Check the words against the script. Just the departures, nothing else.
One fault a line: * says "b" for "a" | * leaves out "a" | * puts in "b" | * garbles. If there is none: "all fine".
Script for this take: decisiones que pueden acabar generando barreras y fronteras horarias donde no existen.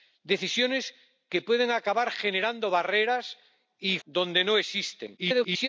* leaves out "fronteras horarias"
* garbles